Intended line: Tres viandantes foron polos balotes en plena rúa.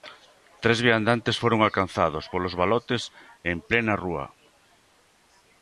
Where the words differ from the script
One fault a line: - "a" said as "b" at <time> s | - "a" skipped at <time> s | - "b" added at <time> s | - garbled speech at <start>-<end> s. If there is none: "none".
- "alcanzados" added at 1.6 s